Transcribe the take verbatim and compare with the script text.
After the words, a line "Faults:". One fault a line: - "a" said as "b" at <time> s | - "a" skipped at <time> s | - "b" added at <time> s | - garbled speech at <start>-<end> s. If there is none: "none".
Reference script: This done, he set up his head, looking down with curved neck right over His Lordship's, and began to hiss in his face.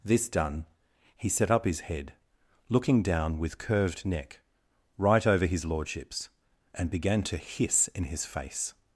This done, he set up his head, looking down with curved neck right over His Lordship's, and began to hiss in his face.
Faults:
none